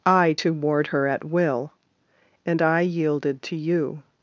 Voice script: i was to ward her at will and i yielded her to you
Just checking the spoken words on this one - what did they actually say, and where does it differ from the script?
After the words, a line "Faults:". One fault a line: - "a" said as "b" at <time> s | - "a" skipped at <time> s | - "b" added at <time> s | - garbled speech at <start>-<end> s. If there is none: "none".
i to ward her at will and i yielded to you
Faults:
- "was" skipped at 0.3 s
- "her" skipped at 3.4 s